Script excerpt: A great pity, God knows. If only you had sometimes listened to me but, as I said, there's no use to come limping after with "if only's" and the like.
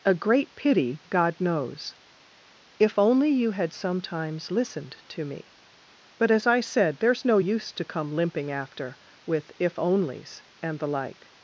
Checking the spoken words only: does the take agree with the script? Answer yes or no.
yes